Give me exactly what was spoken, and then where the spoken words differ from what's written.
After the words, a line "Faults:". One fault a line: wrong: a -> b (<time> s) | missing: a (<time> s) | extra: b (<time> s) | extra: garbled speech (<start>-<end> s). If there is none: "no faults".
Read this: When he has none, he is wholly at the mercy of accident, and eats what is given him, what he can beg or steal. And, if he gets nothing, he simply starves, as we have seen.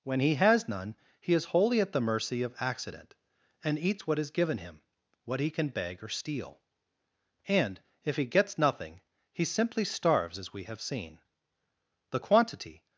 When he has none, he is wholly at the mercy of accident, and eats what is given him, what he can beg or steal. And, if he gets nothing, he simply starves, as we have seen. The quantity
Faults:
extra: The quantity (12.1 s)